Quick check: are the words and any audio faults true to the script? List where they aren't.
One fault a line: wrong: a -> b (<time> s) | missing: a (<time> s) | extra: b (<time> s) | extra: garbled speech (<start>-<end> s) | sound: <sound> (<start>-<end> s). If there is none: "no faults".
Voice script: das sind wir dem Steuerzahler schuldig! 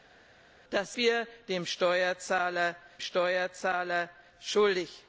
missing: sind (1.0 s)
extra: Steuerzahler (3.0 s)